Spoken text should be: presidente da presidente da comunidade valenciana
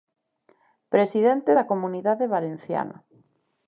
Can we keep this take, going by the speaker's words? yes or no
no